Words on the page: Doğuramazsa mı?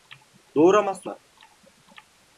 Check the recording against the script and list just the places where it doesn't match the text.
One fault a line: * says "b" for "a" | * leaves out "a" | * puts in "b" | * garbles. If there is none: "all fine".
all fine